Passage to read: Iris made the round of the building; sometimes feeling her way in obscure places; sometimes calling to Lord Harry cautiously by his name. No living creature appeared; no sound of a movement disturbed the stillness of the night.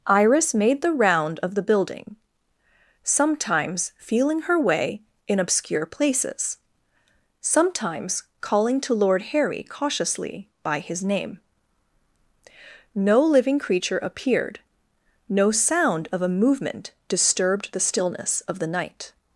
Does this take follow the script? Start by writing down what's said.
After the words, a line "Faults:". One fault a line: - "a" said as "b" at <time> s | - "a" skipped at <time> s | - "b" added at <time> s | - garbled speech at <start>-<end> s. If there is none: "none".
Iris made the round of the building; sometimes feeling her way in obscure places; sometimes calling to Lord Harry cautiously by his name. No living creature appeared; no sound of a movement disturbed the stillness of the night.
Faults:
none